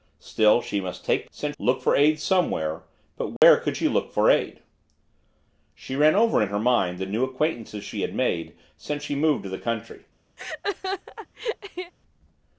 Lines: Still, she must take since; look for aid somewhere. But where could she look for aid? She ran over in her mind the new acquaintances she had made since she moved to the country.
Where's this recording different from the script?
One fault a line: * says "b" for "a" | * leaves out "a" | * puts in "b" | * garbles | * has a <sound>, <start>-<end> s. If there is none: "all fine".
* has a dropout, 3.4-3.4 s
* has a laugh, 10.4-11.9 s